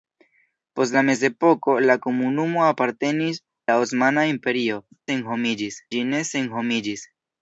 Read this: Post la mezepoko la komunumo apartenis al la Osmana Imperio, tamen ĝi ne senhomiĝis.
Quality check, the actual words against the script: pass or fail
fail